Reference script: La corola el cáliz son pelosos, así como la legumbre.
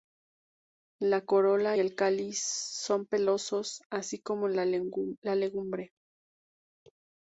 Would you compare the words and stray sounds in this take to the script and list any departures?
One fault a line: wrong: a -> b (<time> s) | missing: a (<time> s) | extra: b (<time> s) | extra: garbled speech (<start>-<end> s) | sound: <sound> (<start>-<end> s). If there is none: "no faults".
no faults